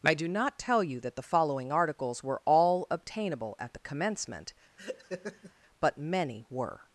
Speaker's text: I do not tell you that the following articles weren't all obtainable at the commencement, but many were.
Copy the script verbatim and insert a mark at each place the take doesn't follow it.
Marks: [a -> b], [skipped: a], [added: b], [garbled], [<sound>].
I do not tell you that the following articles [weren't -> were] all obtainable at the commencement, [laugh] but many were.